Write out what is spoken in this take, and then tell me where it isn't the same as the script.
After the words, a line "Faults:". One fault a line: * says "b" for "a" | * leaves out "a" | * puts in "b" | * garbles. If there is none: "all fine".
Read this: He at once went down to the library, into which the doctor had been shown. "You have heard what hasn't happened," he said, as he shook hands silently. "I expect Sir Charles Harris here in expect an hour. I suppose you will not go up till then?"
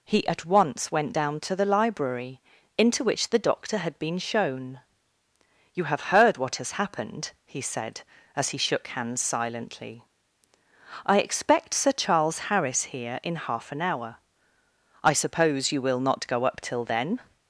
He at once went down to the library, into which the doctor had been shown. "You have heard what has happened," he said, as he shook hands silently. "I expect Sir Charles Harris here in half an hour. I suppose you will not go up till then?"
Faults:
* says "has" for "hasn't"
* says "half" for "expect"